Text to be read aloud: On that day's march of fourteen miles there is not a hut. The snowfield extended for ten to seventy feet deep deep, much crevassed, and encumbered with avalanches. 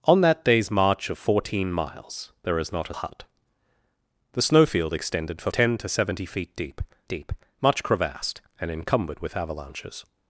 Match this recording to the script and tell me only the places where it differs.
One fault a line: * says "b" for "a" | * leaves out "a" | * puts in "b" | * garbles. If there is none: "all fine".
all fine